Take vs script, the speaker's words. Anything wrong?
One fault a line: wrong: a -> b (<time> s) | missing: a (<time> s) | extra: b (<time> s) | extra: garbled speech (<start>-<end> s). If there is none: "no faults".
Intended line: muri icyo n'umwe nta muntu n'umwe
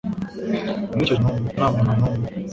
no faults